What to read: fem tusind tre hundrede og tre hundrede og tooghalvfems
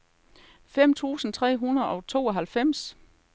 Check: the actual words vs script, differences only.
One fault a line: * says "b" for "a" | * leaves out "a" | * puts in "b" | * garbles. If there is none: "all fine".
* leaves out "tre hundrede og"